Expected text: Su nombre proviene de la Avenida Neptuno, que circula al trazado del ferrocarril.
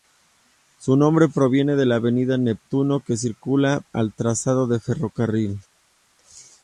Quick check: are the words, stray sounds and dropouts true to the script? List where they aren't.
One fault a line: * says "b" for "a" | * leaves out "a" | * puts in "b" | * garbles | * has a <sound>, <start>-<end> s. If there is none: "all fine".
all fine